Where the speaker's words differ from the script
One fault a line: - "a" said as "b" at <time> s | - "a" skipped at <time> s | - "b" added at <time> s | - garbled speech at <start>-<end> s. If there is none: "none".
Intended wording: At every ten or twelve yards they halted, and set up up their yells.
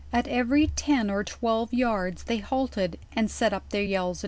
- "up" skipped at 3.7 s